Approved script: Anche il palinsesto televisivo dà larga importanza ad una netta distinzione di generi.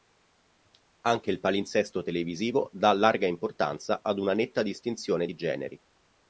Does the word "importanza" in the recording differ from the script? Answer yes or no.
no